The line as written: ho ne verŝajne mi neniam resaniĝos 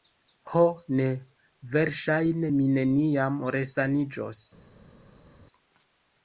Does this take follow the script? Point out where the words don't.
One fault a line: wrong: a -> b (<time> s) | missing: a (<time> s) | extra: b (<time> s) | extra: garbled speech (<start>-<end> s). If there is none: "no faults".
no faults